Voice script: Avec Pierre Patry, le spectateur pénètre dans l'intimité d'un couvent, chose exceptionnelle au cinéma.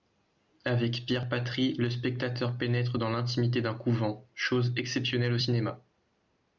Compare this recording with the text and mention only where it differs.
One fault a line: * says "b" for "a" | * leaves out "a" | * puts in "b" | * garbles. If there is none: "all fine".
all fine